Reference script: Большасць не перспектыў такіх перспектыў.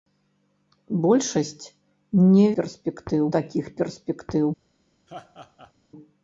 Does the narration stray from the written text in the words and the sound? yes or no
yes